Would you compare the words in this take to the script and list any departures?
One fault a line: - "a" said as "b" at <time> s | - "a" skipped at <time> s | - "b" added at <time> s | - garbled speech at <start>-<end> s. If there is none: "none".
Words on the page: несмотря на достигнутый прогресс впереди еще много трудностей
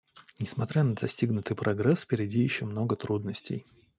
none